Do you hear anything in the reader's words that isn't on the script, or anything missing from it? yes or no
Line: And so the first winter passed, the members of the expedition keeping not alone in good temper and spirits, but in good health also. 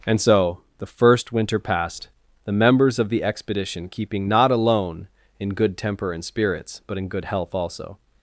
no